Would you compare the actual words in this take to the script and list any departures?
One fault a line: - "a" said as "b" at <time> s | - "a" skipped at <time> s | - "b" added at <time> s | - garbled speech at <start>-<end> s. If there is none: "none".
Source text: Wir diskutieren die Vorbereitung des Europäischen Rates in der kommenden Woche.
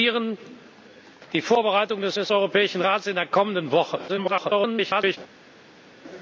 - "des" added at 2.1 s
- garbled speech at 4.1-5.2 s